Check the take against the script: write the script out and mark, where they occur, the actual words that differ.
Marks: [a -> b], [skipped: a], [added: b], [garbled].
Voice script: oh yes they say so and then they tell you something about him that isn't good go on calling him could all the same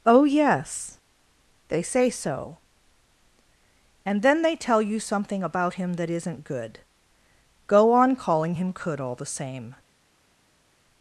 oh yes they say so and then they tell you something about him that isn't good go on calling him could all the same